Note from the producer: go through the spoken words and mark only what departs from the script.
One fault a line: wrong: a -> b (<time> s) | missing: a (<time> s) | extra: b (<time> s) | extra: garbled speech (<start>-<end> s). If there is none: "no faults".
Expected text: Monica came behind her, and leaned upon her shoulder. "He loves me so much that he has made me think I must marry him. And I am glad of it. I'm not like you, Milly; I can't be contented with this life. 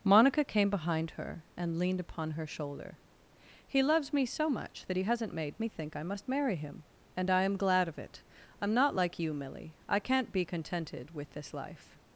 wrong: has -> hasn't (5.0 s)